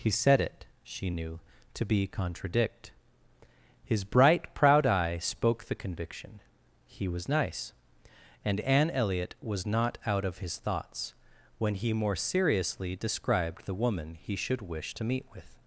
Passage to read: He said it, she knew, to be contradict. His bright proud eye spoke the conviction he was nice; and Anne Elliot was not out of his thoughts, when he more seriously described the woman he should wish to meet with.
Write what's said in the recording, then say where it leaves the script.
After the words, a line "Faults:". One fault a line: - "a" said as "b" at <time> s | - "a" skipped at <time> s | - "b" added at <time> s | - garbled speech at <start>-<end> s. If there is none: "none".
He said it, she knew, to be contradict. His bright proud eye spoke the conviction he was nice; and Anne Elliot was not out of his thoughts, when he more seriously described the woman he should wish to meet with.
Faults:
none